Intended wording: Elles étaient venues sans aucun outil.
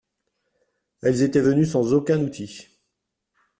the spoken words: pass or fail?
pass